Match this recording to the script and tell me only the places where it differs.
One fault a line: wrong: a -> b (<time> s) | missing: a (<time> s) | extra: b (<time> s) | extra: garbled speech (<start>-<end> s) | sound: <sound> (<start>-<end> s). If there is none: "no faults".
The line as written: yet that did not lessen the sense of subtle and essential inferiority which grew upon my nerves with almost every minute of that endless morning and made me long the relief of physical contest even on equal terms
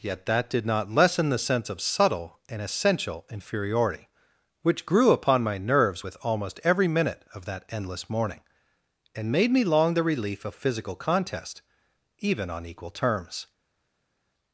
no faults